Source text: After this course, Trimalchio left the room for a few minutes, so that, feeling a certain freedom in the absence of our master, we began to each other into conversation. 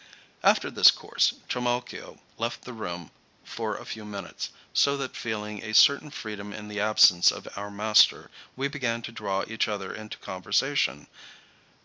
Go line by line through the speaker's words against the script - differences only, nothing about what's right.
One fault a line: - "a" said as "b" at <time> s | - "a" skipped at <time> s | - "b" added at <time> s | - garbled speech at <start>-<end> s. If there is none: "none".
- "draw" added at 9.1 s